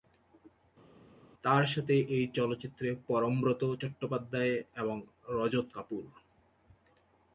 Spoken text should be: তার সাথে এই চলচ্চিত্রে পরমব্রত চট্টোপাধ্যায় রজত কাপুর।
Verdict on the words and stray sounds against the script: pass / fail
fail